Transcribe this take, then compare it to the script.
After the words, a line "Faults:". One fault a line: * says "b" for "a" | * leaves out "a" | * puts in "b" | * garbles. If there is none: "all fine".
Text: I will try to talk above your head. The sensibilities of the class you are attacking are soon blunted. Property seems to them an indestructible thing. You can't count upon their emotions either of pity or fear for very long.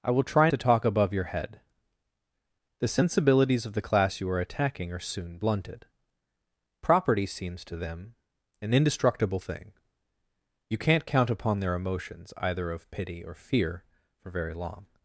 I will try to talk above your head. The sensibilities of the class you are attacking are soon blunted. Property seems to them an indestructible thing. You can't count upon their emotions either of pity or fear for very long.
Faults:
all fine